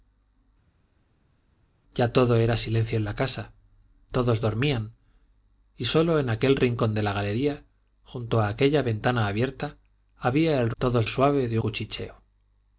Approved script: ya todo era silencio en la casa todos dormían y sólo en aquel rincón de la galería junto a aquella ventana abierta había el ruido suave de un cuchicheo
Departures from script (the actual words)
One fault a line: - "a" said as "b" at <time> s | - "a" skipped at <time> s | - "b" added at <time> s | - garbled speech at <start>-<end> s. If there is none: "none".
- "ruido" said as "todos" at 10.8 s
- "un" skipped at 11.6 s